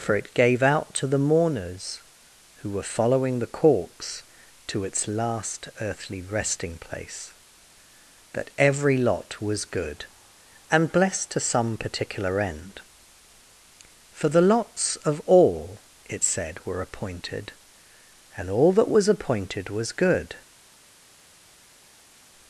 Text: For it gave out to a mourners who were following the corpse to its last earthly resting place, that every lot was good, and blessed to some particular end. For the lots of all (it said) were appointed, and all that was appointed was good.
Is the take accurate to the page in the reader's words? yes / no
no